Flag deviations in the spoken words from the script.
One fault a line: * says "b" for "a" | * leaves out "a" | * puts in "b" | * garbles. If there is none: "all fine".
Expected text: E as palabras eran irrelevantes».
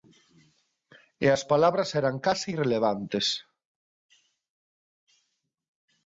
* puts in "case"